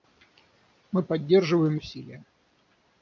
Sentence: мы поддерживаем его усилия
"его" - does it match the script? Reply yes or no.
no